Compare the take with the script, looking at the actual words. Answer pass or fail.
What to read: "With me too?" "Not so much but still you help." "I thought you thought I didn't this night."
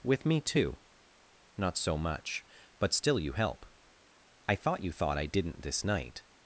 pass